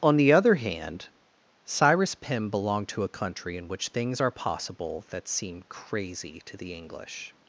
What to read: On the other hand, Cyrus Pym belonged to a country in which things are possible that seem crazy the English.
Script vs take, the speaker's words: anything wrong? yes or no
yes